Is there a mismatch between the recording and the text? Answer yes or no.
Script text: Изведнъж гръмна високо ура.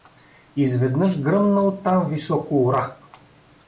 yes